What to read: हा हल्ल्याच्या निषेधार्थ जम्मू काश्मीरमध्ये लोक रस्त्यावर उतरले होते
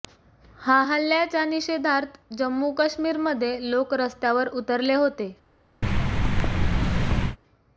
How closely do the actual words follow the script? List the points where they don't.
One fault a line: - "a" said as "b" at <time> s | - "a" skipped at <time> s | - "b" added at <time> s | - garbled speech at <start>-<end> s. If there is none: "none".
none